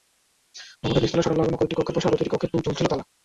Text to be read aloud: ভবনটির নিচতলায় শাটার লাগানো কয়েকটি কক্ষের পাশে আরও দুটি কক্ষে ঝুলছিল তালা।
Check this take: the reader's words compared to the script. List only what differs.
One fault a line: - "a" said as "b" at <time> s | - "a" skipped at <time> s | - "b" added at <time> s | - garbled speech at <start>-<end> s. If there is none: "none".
none